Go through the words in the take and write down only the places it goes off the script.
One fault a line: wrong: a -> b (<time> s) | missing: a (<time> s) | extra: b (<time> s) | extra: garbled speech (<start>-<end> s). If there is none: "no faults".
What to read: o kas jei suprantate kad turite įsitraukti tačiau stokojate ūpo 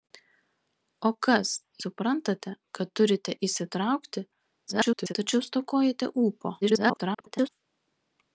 missing: jei (1.5 s)
extra: garbled speech (4.7-5.1 s)
extra: garbled speech (6.6-7.5 s)